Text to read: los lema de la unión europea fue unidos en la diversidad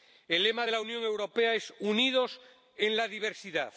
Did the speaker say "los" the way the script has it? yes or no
no